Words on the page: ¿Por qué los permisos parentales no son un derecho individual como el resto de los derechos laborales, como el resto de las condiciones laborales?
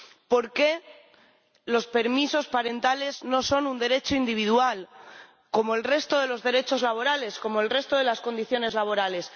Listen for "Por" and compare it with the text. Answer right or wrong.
right